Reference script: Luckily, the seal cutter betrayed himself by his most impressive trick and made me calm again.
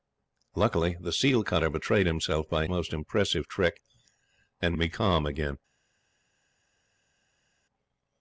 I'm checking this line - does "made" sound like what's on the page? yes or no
no